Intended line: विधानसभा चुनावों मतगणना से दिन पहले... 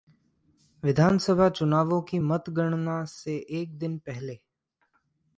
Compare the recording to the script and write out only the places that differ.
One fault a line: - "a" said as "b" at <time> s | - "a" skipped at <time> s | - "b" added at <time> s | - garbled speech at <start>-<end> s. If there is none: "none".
- "की" added at 2.0 s
- "एक" added at 3.5 s